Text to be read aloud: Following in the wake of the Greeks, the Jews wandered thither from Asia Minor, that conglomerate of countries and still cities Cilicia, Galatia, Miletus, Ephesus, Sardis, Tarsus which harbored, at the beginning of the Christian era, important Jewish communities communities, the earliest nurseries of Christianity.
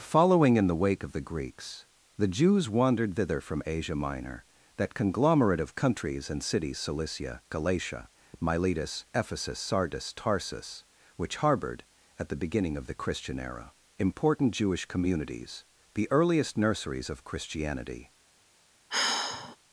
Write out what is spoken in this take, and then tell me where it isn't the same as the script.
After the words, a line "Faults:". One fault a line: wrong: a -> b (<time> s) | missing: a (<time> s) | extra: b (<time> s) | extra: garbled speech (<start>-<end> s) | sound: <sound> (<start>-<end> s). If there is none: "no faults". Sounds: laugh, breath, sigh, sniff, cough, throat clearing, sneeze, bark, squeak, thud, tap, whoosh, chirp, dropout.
Following in the wake of the Greeks, the Jews wandered thither from Asia Minor, that conglomerate of countries and cities Cilicia, Galatia, Miletus, Ephesus, Sardis, Tarsus which harbored, at the beginning of the Christian era, important Jewish communities, the earliest nurseries of Christianity.
Faults:
missing: still (6.4 s)
missing: communities (15.7 s)
sound: sigh (18.9-19.6 s)